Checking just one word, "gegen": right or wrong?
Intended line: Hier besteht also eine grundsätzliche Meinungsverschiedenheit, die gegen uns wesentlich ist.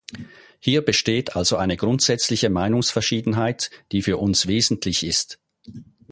wrong